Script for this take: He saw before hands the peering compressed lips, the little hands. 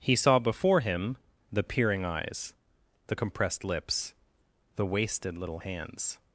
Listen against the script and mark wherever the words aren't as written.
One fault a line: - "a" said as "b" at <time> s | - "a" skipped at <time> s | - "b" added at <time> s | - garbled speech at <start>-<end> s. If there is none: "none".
- "hands" said as "him" at 0.8 s
- "eyes the" added at 2.0 s
- "wasted" added at 4.9 s